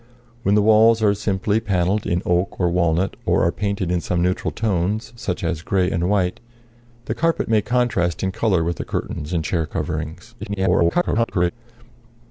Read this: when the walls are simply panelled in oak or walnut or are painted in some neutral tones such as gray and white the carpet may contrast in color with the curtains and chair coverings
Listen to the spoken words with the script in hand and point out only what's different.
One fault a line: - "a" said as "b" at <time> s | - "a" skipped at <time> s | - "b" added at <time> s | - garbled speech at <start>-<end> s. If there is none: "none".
- garbled speech at 10.4-11.5 s